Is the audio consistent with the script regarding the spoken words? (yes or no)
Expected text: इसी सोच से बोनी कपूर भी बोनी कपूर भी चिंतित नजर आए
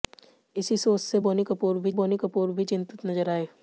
yes